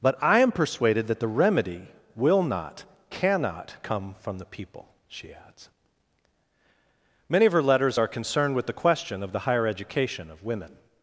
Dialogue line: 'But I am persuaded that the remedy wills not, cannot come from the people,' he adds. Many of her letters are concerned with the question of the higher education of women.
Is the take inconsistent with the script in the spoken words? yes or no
yes